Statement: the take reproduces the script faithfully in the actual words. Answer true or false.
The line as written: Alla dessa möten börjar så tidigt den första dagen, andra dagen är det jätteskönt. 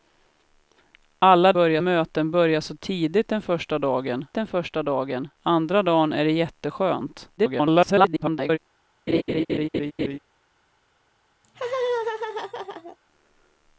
false